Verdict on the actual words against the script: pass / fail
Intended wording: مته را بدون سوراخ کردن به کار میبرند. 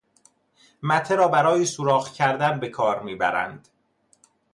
fail